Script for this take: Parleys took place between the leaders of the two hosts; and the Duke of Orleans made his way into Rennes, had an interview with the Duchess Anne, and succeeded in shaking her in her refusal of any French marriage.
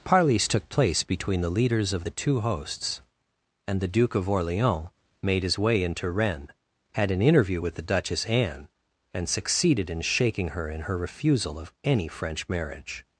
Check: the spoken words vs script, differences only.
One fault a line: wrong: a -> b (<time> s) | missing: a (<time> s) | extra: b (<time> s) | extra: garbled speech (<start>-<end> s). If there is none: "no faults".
no faults